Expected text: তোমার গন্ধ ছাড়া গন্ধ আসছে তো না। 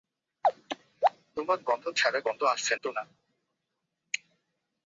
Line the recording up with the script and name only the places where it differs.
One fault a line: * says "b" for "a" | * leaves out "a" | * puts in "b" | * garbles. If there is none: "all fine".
all fine